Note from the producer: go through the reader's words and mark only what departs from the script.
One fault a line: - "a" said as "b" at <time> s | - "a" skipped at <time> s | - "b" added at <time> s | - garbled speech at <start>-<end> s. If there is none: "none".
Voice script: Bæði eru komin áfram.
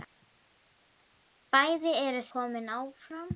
none